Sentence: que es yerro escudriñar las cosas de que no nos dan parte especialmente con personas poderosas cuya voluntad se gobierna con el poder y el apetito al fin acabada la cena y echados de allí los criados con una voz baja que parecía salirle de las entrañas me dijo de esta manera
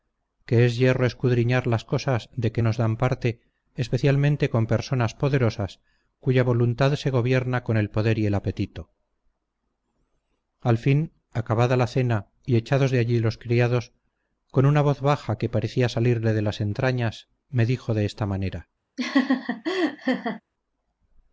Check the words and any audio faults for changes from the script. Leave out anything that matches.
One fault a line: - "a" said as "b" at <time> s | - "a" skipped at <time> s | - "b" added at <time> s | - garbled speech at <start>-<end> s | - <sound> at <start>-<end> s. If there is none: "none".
- "no" skipped at 2.6 s
- laugh at 19.0-20.4 s